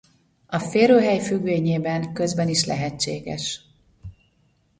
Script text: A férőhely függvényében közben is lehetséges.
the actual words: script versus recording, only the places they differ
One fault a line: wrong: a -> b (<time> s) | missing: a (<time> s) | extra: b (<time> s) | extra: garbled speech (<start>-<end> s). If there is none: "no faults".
no faults